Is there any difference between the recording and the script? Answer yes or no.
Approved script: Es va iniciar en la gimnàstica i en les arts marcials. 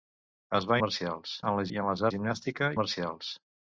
yes